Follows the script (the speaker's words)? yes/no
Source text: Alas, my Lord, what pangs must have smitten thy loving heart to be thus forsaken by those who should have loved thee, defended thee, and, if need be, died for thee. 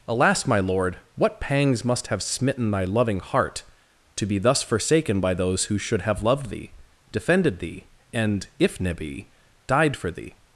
no